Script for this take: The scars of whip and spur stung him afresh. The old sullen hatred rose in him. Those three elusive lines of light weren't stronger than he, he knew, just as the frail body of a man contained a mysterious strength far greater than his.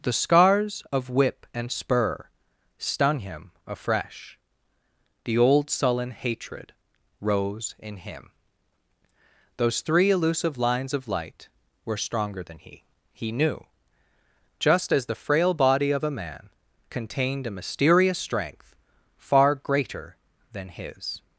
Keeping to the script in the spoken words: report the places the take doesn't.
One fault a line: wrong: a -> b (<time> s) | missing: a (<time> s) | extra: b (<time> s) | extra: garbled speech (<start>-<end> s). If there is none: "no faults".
wrong: weren't -> were (11.8 s)